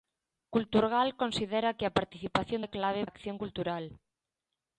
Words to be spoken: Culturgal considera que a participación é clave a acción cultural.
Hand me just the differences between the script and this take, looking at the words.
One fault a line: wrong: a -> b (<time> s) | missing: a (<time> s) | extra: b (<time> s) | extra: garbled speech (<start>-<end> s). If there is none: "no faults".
no faults